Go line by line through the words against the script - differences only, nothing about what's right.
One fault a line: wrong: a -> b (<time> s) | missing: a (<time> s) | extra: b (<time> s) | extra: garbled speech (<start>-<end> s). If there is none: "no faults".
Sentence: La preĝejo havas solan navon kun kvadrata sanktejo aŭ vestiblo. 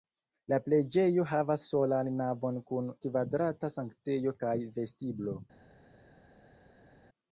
wrong: aŭ -> kaj (4.4 s)